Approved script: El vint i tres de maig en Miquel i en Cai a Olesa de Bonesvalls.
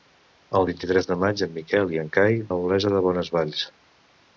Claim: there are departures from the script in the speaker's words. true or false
false